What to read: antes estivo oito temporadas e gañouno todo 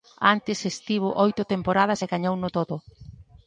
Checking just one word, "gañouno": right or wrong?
right